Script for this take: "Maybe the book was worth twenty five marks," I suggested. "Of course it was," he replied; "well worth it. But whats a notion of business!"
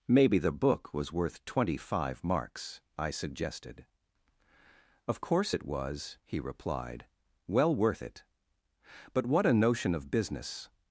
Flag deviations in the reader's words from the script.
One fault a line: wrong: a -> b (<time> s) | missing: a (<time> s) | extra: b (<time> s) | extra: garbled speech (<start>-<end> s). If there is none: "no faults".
wrong: whats -> what (9.2 s)